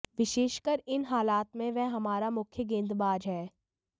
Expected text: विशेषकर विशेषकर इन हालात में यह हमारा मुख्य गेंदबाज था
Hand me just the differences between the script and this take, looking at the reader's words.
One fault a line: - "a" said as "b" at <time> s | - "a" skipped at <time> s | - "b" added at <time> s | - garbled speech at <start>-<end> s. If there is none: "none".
- "विशेषकर" skipped at 0.8 s
- "यह" said as "वह" at 1.7 s
- "था" said as "है" at 3.3 s